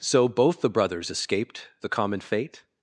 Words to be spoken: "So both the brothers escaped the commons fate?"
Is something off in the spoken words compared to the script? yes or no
yes